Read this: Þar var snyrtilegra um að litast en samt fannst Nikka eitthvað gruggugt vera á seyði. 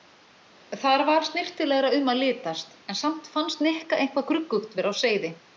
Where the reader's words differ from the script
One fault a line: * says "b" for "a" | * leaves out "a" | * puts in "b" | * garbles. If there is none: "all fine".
all fine